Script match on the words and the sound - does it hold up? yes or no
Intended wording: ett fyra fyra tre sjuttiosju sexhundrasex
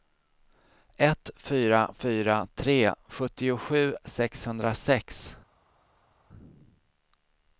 yes